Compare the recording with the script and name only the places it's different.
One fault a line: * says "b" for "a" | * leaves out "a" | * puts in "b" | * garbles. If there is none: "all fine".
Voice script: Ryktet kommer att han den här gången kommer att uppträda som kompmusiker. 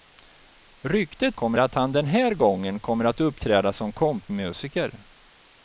all fine